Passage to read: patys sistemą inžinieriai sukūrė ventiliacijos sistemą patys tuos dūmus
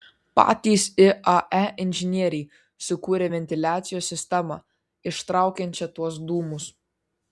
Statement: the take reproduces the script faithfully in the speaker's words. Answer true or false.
false